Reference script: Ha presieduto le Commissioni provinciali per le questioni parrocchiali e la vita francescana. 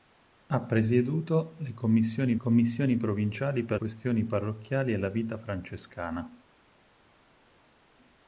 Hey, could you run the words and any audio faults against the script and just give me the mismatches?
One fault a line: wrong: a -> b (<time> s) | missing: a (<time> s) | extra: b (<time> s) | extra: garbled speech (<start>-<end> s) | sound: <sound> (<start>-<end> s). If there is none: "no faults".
extra: Commissioni (2.4 s)
missing: le (3.8 s)